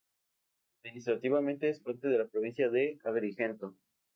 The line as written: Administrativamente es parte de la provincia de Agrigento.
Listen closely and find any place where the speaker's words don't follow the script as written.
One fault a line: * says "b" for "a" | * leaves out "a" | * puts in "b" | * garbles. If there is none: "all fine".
all fine